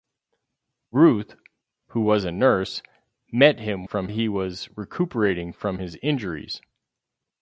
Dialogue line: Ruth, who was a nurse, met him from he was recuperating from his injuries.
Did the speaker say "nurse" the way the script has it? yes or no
yes